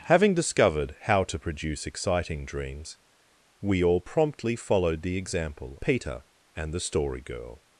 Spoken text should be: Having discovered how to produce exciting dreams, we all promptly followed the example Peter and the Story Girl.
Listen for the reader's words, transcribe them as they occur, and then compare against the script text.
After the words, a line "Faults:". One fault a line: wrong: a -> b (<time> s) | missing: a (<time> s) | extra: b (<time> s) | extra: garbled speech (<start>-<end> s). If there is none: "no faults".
Having discovered how to produce exciting dreams, we all promptly followed the example Peter and the Story Girl.
Faults:
no faults